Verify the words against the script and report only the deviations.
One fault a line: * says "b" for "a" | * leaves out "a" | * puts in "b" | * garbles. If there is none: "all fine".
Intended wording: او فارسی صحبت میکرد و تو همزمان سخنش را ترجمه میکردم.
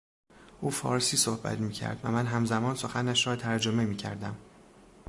* says "من" for "تو"